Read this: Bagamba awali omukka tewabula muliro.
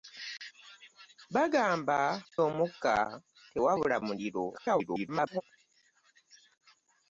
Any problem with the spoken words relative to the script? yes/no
yes